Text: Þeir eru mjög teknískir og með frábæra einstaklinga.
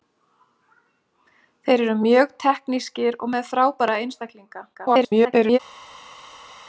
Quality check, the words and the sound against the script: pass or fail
fail